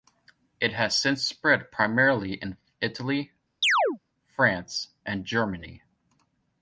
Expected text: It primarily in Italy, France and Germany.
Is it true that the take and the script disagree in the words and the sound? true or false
true